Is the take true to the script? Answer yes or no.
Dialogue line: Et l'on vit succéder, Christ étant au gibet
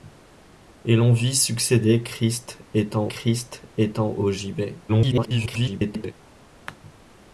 no